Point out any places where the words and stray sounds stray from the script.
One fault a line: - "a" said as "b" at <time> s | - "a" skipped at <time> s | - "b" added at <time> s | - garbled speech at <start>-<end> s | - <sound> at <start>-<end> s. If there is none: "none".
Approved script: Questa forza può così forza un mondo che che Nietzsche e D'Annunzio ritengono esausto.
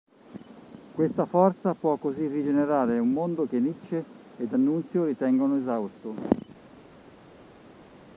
- "forza" said as "rigenerare" at 2.3 s
- "che" skipped at 3.6 s